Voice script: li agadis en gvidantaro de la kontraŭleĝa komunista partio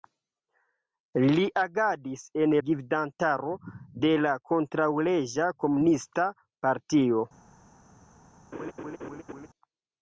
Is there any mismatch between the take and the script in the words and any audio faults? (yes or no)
yes